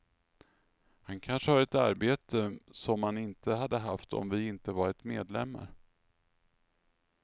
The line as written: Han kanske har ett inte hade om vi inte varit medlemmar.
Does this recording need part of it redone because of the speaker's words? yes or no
yes